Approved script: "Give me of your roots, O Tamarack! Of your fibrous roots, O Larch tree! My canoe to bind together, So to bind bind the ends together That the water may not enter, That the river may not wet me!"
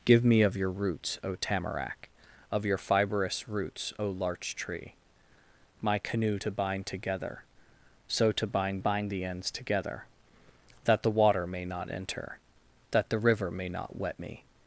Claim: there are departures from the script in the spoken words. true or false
false